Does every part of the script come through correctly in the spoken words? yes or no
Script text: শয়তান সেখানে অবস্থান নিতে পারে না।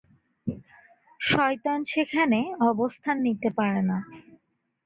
yes